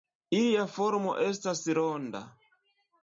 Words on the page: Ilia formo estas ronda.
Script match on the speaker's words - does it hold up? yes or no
yes